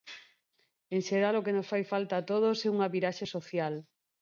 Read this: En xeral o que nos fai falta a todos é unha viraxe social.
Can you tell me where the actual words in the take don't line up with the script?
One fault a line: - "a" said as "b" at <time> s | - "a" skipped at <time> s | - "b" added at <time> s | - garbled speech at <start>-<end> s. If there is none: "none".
none